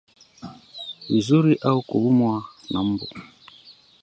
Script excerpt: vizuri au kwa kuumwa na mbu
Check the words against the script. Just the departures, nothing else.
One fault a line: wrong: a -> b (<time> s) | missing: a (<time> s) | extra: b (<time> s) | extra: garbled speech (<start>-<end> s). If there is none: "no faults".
missing: kwa (1.8 s)